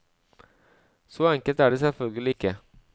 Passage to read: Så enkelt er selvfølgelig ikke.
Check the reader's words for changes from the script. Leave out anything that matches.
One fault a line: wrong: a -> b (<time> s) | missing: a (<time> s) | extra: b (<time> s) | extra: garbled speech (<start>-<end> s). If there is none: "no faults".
extra: det (1.7 s)